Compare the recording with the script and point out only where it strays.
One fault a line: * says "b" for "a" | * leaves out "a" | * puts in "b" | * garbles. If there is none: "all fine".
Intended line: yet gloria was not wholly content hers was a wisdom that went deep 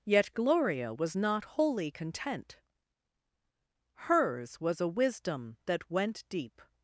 all fine